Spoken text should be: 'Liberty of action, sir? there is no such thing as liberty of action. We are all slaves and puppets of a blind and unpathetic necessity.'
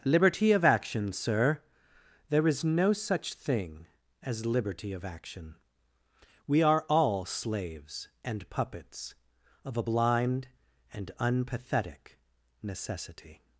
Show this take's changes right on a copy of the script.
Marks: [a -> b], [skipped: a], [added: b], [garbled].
'Liberty of action, sir? there is no such thing as liberty of action. We are all slaves and puppets of a blind and unpathetic necessity.'